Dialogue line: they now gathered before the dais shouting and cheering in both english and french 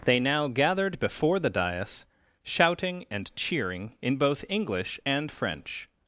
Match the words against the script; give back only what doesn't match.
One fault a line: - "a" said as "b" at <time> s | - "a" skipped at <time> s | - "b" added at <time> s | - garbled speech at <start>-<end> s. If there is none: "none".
none